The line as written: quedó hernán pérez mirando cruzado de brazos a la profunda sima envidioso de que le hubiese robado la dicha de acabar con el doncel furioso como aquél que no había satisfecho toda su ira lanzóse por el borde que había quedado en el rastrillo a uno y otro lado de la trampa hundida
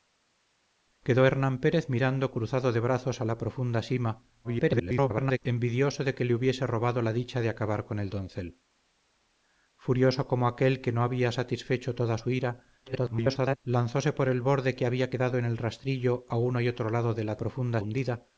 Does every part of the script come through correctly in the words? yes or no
no